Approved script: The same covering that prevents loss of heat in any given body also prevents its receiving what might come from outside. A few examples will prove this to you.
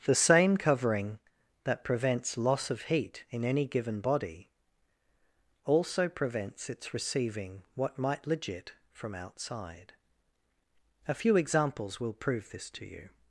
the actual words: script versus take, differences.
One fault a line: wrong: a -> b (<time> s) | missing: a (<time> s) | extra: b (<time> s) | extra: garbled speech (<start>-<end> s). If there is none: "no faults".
wrong: come -> legit (8.2 s)